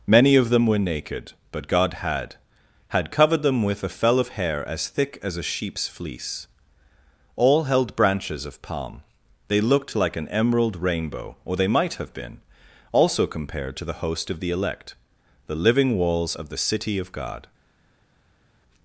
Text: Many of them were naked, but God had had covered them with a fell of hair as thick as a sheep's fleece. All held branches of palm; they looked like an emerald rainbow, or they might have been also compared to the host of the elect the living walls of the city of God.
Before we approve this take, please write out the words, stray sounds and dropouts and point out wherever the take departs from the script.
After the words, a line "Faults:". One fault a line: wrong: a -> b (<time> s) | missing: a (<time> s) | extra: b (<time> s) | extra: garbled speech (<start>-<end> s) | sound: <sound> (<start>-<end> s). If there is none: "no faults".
Many of them were naked, but God had had covered them with a fell of hair as thick as a sheep's fleece. All held branches of palm; they looked like an emerald rainbow, or they might have been also compared to the host of the elect the living walls of the city of God.
Faults:
no faults